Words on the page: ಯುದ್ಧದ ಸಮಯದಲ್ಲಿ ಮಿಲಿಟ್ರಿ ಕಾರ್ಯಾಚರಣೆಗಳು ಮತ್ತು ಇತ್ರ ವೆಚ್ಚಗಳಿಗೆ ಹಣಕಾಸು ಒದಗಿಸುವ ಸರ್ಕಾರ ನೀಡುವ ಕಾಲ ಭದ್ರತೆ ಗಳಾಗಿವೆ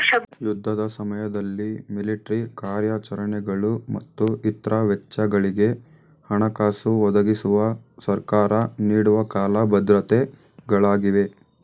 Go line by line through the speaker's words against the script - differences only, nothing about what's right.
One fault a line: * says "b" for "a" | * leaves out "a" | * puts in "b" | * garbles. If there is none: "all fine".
all fine